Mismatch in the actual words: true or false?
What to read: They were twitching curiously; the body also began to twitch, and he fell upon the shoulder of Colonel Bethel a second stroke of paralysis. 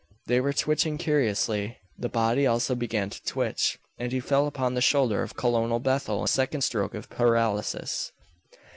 false